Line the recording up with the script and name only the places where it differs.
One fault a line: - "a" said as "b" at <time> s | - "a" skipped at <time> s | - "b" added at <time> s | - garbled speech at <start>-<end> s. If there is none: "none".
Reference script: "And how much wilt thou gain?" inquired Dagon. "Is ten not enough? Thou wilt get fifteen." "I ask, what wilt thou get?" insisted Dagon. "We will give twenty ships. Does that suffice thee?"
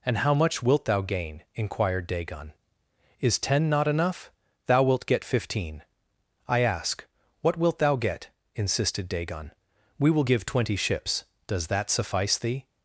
none